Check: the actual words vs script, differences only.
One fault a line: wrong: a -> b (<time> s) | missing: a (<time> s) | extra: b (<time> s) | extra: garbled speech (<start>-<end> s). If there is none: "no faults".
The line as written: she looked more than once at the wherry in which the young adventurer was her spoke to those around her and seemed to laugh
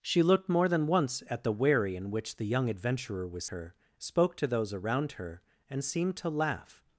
no faults